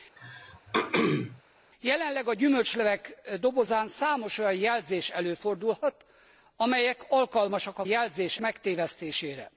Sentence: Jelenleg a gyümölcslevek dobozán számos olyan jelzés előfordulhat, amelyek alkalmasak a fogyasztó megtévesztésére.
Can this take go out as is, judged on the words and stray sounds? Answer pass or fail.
fail